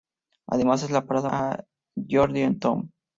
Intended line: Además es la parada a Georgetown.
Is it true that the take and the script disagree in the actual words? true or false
false